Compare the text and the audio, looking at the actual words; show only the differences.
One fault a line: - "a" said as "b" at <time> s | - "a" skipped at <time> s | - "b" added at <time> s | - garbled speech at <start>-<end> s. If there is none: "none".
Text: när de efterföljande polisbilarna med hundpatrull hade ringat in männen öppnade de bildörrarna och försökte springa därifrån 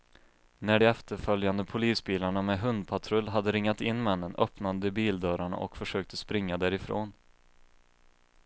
none